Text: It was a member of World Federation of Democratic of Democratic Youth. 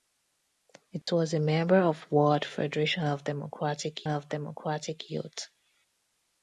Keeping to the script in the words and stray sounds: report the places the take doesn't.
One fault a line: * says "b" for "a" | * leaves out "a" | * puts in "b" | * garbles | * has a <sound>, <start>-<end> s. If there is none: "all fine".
* has a dropout, 1.0-1.1 s